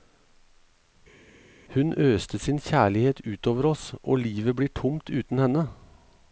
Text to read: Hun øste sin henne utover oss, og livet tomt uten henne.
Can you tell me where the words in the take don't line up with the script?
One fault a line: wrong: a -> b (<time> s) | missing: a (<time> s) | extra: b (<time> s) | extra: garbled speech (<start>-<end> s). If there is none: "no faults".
wrong: henne -> kjærlighet (2.6 s)
extra: blir (4.6 s)